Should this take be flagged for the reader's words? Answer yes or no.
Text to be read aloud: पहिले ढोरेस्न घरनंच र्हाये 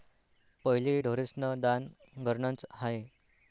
yes